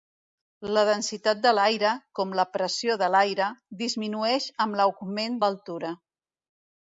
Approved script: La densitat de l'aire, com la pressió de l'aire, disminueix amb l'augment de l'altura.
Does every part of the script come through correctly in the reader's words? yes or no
no